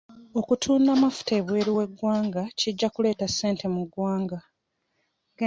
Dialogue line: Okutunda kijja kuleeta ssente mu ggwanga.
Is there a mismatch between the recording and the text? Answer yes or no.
yes